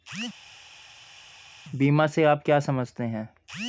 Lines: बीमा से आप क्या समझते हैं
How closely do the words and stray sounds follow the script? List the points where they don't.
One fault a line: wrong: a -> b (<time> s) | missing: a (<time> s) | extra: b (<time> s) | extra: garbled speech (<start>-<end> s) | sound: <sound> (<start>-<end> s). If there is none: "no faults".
no faults